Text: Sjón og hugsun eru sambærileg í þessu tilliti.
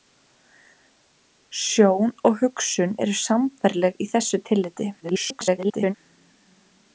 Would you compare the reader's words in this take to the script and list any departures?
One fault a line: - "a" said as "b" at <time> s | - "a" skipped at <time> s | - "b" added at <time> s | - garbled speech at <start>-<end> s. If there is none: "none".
- garbled speech at 5.0-5.9 s